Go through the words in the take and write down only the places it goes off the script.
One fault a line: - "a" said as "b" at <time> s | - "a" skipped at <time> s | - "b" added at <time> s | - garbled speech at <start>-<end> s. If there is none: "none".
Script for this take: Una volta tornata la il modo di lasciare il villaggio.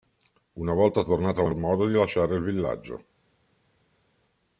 none